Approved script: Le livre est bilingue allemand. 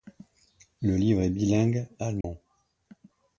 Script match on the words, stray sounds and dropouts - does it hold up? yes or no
no